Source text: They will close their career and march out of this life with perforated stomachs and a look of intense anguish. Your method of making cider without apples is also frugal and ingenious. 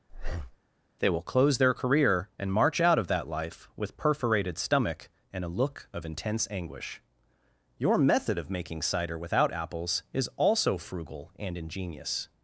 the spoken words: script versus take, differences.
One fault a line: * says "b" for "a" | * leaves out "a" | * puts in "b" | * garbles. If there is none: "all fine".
* says "that" for "this"
* says "stomach" for "stomachs"